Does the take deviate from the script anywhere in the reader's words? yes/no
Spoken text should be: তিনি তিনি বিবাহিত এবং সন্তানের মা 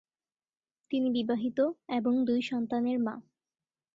yes